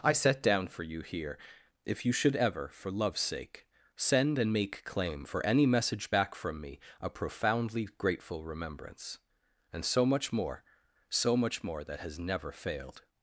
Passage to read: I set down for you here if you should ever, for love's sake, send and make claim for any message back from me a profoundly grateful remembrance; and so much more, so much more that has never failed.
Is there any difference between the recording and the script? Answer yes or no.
no